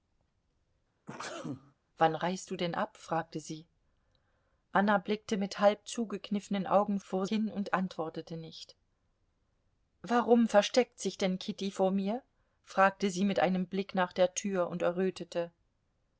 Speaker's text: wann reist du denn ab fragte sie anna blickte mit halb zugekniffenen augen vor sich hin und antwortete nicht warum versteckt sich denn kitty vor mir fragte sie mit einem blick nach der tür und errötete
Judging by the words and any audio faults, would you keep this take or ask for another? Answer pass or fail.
fail